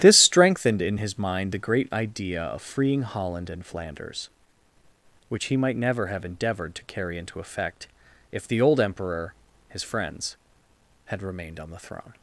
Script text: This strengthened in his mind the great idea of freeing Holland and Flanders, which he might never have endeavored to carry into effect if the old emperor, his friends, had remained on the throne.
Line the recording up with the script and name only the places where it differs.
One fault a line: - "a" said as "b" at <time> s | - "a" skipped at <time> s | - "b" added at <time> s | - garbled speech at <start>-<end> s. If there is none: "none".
none